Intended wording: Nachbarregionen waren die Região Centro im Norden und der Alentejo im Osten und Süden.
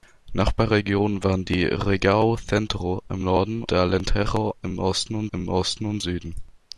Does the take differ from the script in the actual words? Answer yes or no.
yes